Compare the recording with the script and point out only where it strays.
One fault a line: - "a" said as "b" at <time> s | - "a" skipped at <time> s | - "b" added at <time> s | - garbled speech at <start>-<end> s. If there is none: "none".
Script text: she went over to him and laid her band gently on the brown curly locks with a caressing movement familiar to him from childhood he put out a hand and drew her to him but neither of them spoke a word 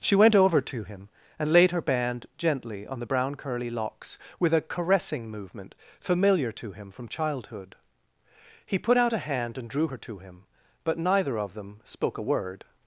none